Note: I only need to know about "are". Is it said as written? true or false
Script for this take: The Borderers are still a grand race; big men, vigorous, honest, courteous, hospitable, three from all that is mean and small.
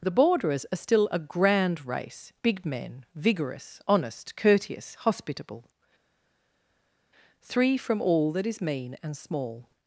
true